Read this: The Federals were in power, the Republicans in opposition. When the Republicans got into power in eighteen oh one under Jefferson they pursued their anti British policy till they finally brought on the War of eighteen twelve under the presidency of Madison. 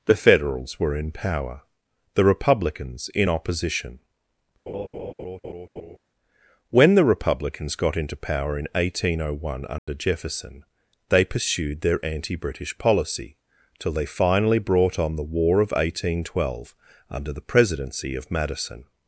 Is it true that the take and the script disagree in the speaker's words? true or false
false